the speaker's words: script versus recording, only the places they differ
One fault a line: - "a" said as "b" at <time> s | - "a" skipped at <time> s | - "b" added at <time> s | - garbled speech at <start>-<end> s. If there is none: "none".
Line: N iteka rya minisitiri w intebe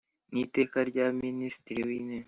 none